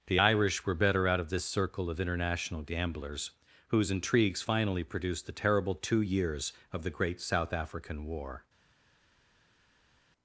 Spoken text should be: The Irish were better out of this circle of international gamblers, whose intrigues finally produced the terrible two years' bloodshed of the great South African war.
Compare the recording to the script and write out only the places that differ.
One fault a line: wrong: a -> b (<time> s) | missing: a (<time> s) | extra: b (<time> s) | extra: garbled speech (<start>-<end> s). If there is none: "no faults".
missing: bloodshed (6.5 s)